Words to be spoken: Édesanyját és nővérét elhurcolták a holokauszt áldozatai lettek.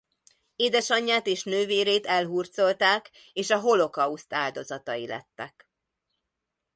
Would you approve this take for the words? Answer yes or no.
no